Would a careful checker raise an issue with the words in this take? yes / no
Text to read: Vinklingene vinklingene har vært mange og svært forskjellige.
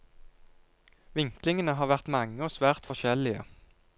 yes